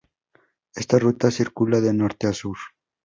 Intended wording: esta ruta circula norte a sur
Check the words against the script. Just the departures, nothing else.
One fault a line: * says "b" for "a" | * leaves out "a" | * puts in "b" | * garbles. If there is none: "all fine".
* puts in "de"